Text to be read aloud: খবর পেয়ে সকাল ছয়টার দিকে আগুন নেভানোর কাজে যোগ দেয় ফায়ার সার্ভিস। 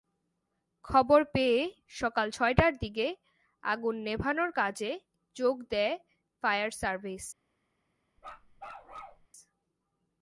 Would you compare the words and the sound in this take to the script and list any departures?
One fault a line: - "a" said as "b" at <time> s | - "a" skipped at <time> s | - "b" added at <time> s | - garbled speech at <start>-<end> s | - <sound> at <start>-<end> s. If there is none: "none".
- bark at 8.2-9.3 s